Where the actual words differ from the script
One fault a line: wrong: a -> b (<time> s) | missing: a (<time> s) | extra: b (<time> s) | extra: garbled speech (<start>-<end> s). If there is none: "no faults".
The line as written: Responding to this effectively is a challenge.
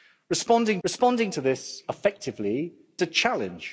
extra: responding (0.8 s)
missing: is (2.7 s)